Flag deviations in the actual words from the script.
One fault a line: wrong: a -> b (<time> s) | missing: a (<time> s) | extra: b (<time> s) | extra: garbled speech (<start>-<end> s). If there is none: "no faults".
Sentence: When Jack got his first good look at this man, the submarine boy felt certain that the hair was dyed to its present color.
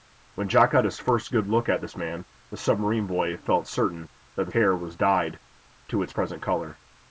no faults